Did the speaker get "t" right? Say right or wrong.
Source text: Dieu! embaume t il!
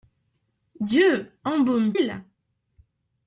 wrong